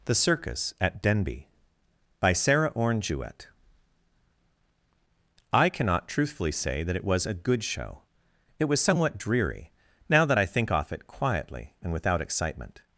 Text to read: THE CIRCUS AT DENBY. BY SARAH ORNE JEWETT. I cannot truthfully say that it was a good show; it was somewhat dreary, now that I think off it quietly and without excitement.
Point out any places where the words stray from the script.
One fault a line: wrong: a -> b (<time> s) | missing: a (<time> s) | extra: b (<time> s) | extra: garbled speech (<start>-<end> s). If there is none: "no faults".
no faults